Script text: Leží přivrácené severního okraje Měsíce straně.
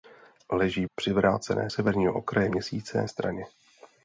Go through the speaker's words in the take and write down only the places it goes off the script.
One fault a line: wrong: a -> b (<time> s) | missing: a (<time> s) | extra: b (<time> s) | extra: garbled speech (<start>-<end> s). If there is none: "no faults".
no faults